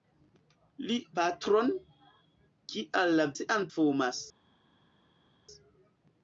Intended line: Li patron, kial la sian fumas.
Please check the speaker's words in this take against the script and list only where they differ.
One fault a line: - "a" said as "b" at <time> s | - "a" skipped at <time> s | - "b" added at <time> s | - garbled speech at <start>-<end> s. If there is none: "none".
none